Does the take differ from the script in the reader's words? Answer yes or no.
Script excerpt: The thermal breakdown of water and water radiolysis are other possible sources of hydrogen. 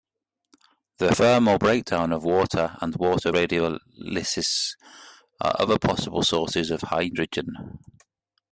no